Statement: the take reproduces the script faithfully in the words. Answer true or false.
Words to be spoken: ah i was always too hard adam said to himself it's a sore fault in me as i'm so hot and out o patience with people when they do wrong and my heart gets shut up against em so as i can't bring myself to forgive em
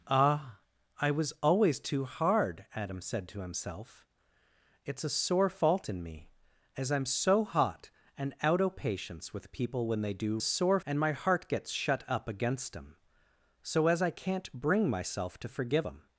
false